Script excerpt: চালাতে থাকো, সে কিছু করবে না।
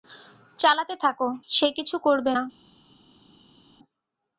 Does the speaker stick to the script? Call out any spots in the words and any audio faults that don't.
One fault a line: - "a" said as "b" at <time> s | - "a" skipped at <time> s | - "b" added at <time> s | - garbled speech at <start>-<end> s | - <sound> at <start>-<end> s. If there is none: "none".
none